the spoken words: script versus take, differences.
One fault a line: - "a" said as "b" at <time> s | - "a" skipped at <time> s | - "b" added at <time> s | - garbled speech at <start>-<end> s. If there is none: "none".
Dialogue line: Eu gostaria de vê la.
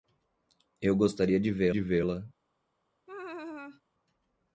- "de vê" added at 1.7 s